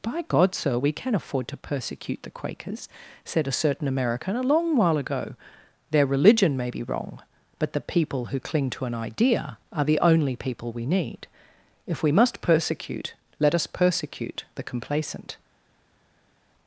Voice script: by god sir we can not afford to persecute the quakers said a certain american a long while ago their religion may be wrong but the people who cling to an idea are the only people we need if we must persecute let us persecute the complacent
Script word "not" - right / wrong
wrong